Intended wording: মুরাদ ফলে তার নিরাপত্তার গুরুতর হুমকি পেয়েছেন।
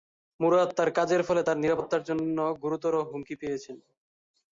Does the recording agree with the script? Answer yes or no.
no